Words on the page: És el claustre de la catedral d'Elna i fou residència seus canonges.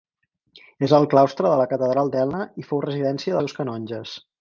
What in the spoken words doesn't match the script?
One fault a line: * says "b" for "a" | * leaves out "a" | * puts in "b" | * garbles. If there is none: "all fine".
all fine